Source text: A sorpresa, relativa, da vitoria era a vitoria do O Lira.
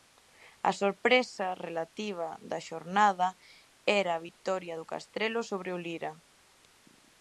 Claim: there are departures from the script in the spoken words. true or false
true